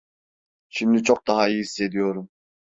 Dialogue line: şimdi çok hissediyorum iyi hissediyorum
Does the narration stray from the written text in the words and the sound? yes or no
yes